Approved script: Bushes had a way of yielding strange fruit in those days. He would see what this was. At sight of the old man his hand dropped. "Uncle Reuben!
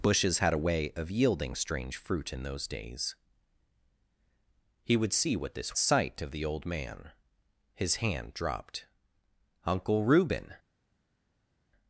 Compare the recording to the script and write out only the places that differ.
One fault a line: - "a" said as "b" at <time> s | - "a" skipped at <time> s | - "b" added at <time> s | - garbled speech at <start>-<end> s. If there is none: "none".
- "was At" skipped at 5.8 s